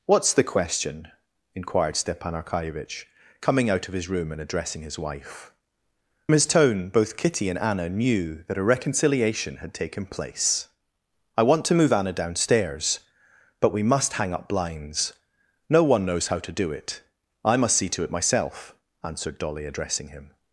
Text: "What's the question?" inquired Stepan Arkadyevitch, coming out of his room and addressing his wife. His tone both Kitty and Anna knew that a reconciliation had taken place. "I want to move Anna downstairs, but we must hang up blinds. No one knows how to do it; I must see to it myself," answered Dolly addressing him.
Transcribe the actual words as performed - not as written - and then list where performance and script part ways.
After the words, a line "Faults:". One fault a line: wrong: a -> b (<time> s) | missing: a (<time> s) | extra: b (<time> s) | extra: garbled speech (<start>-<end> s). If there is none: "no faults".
"What's the question?" inquired Stepan Arkadyevitch, coming out of his room and addressing his wife. His tone both Kitty and Anna knew that a reconciliation had taken place. "I want to move Anna downstairs, but we must hang up blinds. No one knows how to do it; I must see to it myself," answered Dolly addressing him.
Faults:
no faults